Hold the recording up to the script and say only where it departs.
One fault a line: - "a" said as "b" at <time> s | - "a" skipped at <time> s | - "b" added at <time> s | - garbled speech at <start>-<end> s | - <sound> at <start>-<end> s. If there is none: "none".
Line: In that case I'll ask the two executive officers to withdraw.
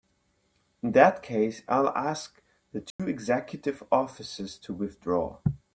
- dropout at 2.9-3.0 s